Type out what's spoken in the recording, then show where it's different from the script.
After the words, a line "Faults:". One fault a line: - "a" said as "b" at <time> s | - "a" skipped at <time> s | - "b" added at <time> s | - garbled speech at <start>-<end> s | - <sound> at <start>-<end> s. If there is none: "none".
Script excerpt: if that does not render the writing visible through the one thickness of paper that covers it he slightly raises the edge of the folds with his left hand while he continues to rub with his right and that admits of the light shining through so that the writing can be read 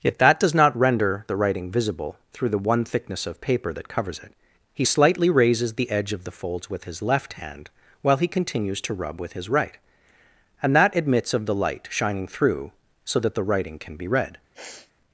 yet that does not render the writing visible through the one thickness of paper that covers it he slightly raises the edge of the folds with his left hand while he continues to rub with his right and that admits of the light shining through so that the writing can be read
Faults:
- "if" said as "yet" at 0.0 s
- sniff at 14.5-14.9 s